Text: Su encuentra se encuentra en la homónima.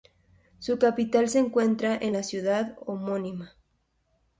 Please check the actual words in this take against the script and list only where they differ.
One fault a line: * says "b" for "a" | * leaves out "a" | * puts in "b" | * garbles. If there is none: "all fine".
* says "capital" for "encuentra"
* puts in "ciudad"